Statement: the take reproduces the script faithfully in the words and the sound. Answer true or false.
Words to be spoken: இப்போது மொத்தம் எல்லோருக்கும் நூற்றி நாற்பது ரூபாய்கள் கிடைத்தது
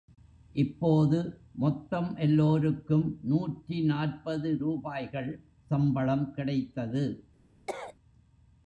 false